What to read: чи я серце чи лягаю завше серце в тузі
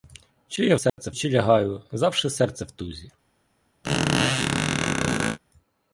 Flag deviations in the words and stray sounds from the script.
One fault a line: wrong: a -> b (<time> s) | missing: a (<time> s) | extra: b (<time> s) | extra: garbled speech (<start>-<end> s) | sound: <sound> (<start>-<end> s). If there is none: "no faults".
sound: dropout (0.9-1.0 s)
sound: squeak (3.8-5.4 s)